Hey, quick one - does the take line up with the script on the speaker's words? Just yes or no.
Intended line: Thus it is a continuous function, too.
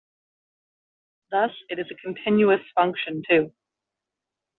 yes